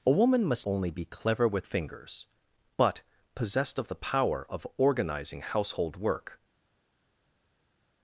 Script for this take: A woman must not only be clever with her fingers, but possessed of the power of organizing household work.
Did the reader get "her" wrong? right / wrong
wrong